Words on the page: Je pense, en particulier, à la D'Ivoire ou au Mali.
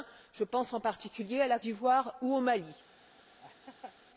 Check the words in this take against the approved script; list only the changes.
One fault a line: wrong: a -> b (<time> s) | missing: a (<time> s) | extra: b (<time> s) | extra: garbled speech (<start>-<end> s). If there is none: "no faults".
no faults